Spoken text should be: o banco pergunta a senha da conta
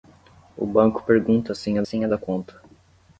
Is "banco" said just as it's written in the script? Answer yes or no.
yes